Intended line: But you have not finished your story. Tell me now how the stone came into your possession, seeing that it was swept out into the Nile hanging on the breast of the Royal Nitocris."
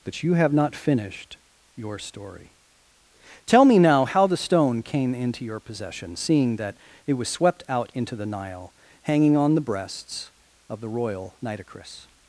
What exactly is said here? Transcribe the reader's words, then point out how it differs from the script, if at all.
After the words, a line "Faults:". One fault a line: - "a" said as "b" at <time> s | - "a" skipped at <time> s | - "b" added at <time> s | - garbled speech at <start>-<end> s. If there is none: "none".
But you have not finished your story. Tell me now how the stone came into your possession, seeing that it was swept out into the Nile hanging on the breasts of the Royal Nitocris."
Faults:
- "breast" said as "breasts" at 9.6 s